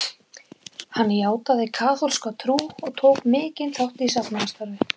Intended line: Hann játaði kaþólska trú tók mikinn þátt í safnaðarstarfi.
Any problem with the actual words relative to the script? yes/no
yes